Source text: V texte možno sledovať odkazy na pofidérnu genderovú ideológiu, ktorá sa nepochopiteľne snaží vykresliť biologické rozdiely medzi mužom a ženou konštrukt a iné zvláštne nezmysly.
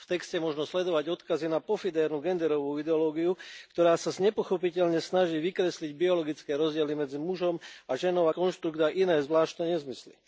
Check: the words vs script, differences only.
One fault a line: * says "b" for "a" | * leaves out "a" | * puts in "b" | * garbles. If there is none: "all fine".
all fine